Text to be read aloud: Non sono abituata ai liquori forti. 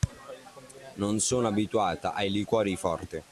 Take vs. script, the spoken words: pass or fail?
pass